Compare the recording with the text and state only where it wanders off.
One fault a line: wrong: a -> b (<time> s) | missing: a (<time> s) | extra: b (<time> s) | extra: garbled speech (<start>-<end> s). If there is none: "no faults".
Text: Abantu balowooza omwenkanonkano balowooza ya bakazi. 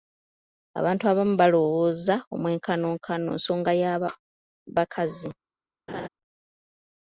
extra: abamu (1.1 s)
wrong: balowooza -> nsonga (3.4 s)